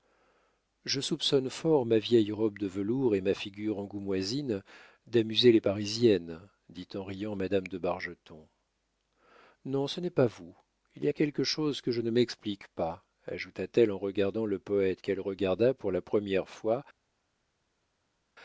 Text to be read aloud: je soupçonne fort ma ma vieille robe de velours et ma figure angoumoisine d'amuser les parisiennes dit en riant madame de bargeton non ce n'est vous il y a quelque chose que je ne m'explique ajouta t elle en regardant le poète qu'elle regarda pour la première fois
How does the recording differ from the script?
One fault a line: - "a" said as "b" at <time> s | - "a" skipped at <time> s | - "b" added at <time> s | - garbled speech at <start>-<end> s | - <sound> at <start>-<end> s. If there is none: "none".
- "ma" skipped at 2.0 s
- "pas" added at 10.1 s
- "pas" added at 12.7 s